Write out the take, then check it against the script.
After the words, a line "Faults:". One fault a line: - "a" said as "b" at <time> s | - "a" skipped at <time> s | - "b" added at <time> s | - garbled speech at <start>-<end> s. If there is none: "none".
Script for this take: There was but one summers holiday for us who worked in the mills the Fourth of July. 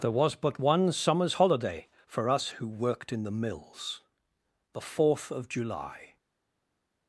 There was but one summers holiday for us who worked in the mills the Fourth of July.
Faults:
none